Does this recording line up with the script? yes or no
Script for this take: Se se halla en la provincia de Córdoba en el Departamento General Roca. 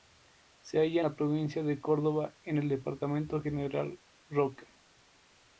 no